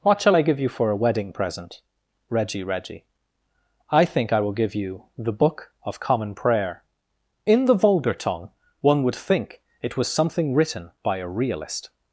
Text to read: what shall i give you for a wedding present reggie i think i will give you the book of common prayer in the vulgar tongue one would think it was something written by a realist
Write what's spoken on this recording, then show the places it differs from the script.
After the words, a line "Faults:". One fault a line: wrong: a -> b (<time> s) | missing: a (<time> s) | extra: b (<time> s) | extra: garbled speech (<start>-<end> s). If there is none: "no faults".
what shall i give you for a wedding present reggie reggie i think i will give you the book of common prayer in the vulgar tongue one would think it was something written by a realist
Faults:
extra: reggie (2.6 s)